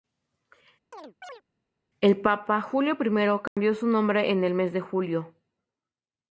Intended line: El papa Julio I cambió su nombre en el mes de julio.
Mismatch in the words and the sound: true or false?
true